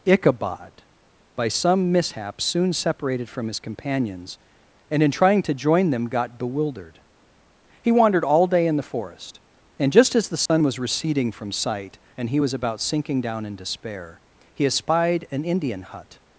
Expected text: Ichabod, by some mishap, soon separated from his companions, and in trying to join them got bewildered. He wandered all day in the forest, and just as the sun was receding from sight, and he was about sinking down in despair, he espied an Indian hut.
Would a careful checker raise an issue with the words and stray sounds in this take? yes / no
yes